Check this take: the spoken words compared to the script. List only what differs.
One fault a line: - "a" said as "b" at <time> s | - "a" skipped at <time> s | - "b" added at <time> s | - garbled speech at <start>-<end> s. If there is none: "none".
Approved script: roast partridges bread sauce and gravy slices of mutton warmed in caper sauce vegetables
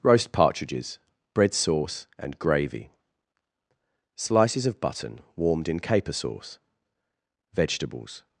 - "mutton" said as "button" at 4.8 s